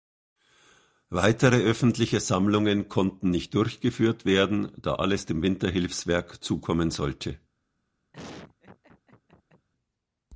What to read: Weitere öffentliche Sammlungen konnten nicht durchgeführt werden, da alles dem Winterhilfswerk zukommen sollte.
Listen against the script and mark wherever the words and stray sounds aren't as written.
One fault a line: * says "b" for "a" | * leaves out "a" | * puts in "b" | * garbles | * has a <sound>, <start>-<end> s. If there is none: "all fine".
* has a laugh, 8.1-9.7 s